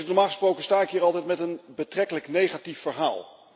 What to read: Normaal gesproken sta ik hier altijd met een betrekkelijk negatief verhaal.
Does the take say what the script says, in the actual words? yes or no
yes